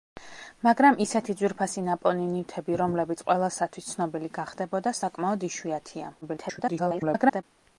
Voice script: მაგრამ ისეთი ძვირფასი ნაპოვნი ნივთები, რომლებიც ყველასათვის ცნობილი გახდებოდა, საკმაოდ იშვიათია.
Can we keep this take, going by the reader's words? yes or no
no